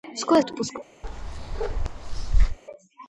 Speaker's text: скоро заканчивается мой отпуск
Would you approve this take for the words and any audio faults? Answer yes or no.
no